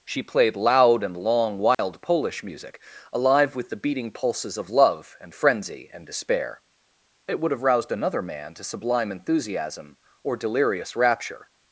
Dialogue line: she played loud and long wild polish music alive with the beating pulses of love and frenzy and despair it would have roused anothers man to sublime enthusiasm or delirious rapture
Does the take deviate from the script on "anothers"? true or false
true